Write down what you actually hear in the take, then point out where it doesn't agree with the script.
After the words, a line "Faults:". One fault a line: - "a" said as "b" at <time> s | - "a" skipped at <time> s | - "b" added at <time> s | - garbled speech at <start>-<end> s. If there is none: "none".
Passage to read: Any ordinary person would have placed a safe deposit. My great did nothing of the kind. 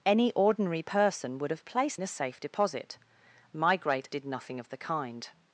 Any ordinary person would have placed a safe deposit. My great did nothing of the kind.
Faults:
none